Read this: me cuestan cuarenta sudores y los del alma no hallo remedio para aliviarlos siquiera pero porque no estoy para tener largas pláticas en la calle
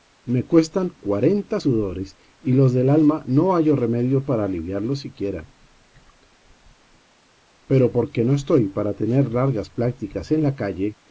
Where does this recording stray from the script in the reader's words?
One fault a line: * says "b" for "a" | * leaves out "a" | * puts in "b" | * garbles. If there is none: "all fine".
all fine